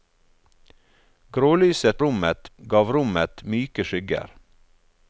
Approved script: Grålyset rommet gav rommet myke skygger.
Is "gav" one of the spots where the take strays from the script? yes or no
no